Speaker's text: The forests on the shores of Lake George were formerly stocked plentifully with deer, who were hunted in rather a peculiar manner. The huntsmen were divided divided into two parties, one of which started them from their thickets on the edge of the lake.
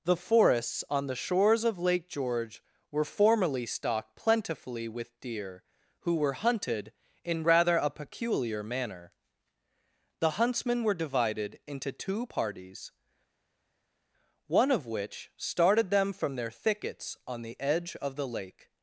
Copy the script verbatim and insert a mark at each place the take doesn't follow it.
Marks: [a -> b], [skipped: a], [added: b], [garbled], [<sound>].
The forests on the shores of Lake George were formerly stocked plentifully with deer, who were hunted in rather a peculiar manner. The huntsmen were divided [skipped: divided] into two parties, one of which started them from their thickets on the edge of the lake.